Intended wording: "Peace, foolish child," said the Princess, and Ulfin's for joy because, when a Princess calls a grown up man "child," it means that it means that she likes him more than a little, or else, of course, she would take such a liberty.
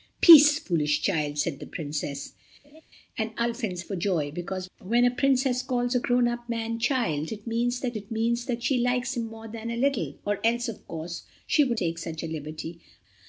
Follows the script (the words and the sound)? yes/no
no